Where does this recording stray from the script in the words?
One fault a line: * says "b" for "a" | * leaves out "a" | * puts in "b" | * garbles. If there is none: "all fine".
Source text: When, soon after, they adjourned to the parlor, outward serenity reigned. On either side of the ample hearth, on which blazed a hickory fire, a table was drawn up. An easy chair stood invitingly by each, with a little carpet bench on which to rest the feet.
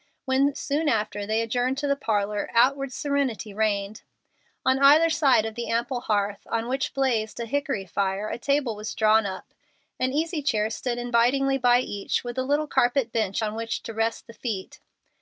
all fine